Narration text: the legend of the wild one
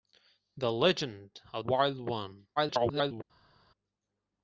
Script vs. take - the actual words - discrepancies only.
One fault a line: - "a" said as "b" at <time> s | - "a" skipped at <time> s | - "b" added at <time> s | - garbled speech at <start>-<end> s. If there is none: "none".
- "the" skipped at 1.6 s
- garbled speech at 2.6-3.2 s